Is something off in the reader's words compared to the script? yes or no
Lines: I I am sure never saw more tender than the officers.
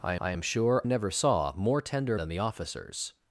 no